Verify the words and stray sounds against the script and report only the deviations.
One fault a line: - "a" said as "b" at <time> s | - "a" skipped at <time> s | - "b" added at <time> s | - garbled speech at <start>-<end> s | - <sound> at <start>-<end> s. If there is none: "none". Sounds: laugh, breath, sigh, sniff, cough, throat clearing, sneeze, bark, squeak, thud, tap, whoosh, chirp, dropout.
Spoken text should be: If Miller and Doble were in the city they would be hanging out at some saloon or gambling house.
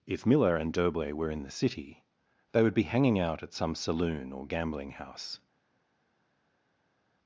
none